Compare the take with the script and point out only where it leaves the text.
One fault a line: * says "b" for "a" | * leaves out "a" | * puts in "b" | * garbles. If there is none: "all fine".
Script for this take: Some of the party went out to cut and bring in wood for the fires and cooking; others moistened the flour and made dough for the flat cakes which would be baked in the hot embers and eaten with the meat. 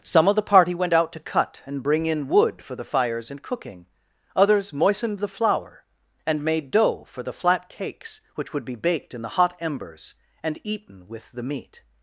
all fine